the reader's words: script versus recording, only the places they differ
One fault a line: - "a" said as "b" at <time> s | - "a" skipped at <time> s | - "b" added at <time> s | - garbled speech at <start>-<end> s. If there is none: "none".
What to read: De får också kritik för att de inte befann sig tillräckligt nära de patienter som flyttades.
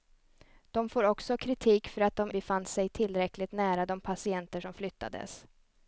- "inte" skipped at 2.3 s